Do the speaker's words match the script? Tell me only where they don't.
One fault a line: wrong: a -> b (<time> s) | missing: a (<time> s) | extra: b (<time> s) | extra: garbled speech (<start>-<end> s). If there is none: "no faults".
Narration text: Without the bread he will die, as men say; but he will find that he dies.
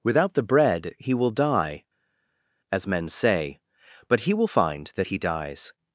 no faults